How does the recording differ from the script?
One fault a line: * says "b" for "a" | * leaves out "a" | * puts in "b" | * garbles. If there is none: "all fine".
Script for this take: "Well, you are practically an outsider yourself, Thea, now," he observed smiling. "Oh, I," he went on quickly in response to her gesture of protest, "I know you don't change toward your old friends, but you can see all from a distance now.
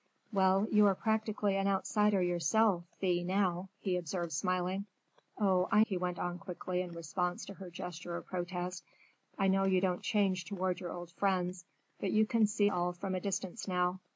all fine